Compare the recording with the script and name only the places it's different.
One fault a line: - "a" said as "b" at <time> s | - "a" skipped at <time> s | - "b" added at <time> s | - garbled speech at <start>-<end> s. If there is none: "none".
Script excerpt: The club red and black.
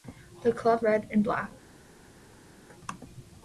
none